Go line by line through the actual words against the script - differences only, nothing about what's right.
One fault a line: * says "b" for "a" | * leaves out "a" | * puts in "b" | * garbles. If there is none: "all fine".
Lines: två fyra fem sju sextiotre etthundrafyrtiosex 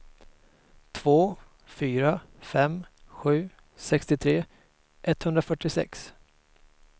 all fine